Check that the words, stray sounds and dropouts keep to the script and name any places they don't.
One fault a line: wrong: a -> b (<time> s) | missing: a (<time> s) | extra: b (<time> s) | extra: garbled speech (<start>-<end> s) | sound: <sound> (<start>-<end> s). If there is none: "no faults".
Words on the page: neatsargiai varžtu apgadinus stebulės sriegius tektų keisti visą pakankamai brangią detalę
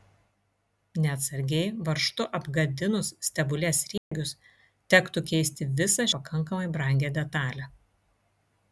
sound: dropout (4.0-4.1 s)